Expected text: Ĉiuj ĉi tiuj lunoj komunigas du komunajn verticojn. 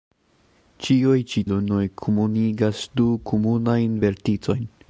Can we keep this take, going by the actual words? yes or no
no